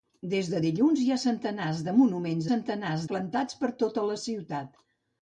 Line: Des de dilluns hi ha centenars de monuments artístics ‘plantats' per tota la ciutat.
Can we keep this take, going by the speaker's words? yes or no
no